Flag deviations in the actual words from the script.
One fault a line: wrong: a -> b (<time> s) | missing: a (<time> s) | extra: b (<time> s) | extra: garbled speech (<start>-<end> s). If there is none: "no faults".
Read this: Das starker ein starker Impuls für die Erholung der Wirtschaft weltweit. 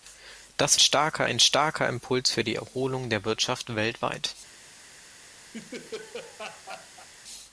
no faults